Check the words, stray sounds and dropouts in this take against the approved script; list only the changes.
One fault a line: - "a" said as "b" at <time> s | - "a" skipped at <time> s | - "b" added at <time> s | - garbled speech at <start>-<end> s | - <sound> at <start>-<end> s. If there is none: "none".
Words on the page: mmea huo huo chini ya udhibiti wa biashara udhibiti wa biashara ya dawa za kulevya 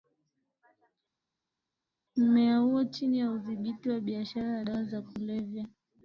- "huo" skipped at 2.8 s
- "udhibiti wa biashara" skipped at 4.6 s